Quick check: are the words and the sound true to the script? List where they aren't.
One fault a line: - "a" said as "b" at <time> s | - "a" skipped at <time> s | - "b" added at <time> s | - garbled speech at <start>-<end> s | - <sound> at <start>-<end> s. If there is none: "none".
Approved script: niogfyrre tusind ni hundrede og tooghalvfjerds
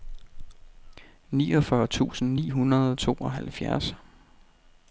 none